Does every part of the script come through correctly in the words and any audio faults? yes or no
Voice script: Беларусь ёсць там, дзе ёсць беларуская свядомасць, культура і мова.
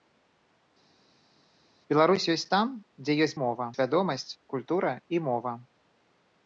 no